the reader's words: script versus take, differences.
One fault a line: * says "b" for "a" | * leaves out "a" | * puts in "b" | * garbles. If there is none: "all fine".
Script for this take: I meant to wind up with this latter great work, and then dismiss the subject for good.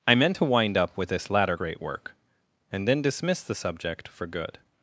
all fine